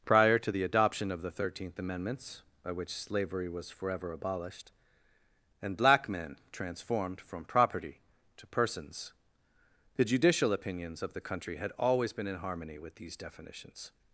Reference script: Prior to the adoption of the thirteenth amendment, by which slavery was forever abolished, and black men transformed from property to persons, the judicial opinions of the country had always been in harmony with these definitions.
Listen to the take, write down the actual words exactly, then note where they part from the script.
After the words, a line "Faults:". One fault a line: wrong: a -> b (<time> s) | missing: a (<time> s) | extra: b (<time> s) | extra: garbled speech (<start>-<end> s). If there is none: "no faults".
Prior to the adoption of the thirteenth amendments, by which slavery was forever abolished, and black men transformed from property to persons, the judicial opinions of the country had always been in harmony with these definitions.
Faults:
wrong: amendment -> amendments (1.8 s)